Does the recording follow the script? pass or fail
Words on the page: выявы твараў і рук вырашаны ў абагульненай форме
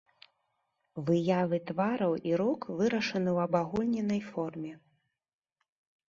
pass